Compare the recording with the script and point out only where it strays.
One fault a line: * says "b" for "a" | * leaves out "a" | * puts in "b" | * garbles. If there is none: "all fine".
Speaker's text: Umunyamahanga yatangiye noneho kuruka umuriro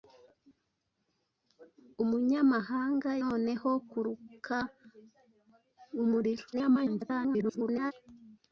* leaves out "yatangiye"
* garbles